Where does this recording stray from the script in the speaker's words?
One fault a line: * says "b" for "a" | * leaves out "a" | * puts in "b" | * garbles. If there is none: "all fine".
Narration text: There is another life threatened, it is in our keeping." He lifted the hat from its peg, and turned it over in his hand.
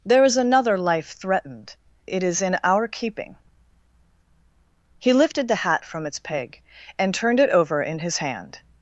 all fine